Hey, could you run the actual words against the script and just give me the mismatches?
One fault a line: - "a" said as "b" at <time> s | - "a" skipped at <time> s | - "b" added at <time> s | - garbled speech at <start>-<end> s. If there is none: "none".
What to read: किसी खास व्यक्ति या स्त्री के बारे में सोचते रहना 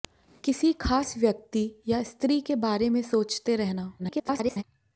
- garbled speech at 4.0-4.6 s